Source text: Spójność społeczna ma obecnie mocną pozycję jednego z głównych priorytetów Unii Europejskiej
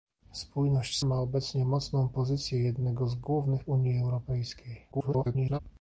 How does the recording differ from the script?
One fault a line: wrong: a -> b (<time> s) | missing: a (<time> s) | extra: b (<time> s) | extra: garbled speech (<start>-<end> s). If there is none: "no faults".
missing: społeczna (1.0 s)
missing: priorytetów (3.6 s)
extra: garbled speech (4.9-5.6 s)